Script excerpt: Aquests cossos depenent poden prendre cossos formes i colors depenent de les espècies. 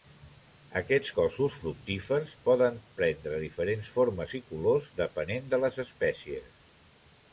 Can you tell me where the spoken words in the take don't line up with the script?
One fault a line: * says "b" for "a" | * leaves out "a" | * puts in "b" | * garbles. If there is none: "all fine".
* says "fructífers" for "depenent"
* says "diferents" for "cossos"